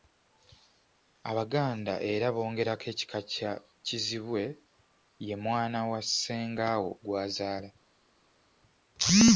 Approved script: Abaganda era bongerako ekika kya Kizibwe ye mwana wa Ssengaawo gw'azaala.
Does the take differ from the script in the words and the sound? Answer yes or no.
no